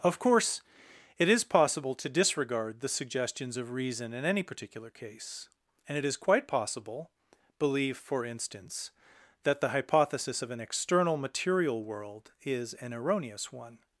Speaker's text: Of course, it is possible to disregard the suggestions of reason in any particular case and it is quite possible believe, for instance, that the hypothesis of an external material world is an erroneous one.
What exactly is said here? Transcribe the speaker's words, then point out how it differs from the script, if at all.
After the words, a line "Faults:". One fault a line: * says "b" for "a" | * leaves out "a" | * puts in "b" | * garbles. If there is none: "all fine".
Of course, it is possible to disregard the suggestions of reason in any particular case and it is quite possible believe, for instance, that the hypothesis of an external material world is an erroneous one.
Faults:
all fine